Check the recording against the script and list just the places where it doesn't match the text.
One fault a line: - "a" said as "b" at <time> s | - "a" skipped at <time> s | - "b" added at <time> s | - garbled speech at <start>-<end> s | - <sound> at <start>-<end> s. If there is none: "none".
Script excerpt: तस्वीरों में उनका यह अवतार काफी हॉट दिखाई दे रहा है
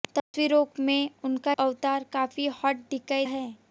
- dropout at 0.2-0.3 s
- "यह" skipped at 1.5 s
- "दे रहा" skipped at 3.3 s